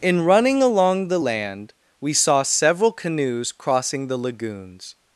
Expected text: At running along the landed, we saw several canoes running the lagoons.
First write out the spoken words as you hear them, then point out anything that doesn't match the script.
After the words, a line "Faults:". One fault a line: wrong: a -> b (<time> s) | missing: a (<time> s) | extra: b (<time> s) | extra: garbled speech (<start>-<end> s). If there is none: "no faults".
In running along the land, we saw several canoes crossing the lagoons.
Faults:
wrong: At -> In (0.0 s)
wrong: landed -> land (1.2 s)
wrong: running -> crossing (3.5 s)